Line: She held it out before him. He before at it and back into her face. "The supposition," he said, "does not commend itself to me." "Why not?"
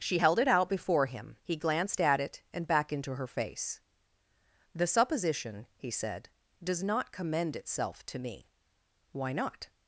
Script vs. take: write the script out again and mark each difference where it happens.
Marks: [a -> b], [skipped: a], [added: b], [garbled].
She held it out before him. He [before -> glanced] at it and back into her face. "The supposition," he said, "does not commend itself to me." "Why not?"